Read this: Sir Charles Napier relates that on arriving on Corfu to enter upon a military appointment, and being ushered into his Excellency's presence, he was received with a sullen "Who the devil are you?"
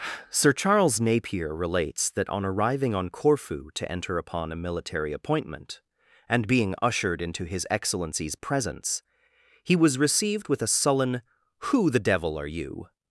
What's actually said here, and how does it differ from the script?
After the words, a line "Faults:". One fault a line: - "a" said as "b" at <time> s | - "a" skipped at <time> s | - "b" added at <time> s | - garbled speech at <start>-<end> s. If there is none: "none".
Sir Charles Napier relates that on arriving on Corfu to enter upon a military appointment, and being ushered into his Excellency's presence, he was received with a sullen "Who the devil are you?"
Faults:
none